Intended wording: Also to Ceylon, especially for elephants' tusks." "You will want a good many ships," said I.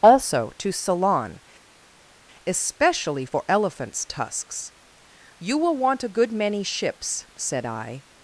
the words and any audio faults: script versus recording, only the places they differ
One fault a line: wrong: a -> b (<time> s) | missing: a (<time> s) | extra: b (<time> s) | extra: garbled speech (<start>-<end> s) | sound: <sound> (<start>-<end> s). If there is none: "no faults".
no faults